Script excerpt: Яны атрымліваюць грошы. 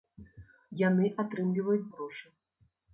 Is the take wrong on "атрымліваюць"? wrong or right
right